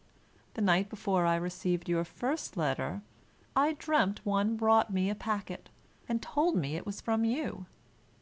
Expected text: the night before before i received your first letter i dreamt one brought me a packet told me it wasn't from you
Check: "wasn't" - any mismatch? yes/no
yes